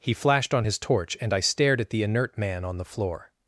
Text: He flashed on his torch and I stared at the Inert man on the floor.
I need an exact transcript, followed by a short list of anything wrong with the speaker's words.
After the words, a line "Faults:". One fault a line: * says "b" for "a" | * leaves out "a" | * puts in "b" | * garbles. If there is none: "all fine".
He flashed on his torch and I stared at the Inert man on the floor.
Faults:
all fine